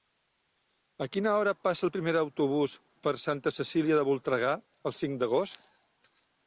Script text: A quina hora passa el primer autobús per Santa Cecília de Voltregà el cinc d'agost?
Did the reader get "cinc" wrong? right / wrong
right